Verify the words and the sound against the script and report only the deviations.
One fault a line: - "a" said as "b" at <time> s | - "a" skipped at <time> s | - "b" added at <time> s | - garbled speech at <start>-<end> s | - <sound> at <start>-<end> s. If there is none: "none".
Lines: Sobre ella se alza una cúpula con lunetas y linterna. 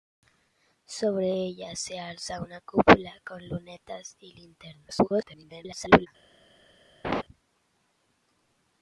- garbled speech at 4.9-6.1 s
- laugh at 7.0-7.2 s